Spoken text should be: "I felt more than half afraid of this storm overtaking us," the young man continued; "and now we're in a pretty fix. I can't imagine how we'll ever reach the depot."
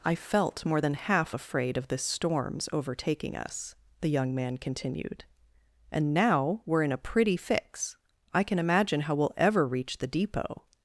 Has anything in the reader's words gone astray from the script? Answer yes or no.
yes